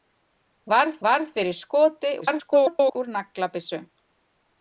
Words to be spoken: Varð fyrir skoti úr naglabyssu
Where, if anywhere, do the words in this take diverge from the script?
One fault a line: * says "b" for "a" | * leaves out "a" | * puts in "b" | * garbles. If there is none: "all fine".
* puts in "varð"
* garbles